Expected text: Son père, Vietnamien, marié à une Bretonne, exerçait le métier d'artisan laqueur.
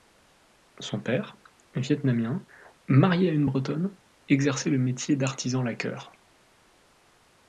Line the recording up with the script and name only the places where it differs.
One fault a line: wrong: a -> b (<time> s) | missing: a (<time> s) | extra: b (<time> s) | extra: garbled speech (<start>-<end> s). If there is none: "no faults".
no faults